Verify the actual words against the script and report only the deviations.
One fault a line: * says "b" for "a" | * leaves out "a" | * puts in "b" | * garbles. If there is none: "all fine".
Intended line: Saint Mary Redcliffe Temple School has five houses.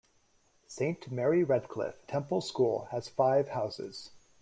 all fine